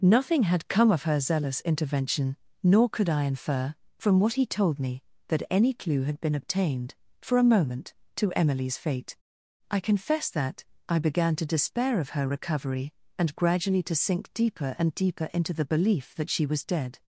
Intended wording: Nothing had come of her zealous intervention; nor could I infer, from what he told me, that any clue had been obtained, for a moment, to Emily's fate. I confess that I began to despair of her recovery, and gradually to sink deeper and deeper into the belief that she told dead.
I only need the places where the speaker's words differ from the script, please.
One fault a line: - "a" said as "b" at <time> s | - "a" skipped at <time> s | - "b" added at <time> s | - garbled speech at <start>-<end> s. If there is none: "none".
- "told" said as "was" at 16.5 s